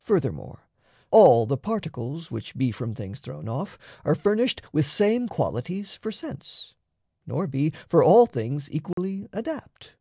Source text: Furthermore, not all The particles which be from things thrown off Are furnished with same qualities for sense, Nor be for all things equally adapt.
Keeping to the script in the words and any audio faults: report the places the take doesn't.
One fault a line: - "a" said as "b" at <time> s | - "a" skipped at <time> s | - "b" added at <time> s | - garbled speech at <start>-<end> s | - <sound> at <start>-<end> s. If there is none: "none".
- "not" skipped at 0.7 s
- dropout at 8.9-9.0 s